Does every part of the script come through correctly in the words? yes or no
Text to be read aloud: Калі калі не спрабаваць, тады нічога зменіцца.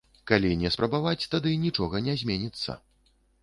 no